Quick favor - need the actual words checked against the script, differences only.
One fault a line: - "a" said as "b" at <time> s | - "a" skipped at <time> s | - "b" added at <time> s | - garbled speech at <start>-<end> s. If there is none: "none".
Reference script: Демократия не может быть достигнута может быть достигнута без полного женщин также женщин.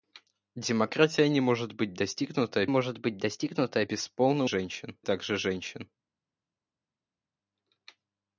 none